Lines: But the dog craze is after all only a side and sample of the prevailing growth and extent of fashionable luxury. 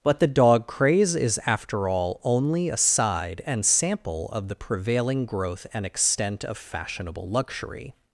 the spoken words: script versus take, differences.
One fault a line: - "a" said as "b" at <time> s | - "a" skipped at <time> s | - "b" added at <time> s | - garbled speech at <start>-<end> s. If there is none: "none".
none